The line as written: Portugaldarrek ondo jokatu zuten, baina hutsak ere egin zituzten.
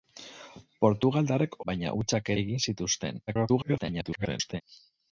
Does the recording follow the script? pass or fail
fail